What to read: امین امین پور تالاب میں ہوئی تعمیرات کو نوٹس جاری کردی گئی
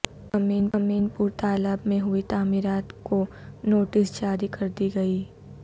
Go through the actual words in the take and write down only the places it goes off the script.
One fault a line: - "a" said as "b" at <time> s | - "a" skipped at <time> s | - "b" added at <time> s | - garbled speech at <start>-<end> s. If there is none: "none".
none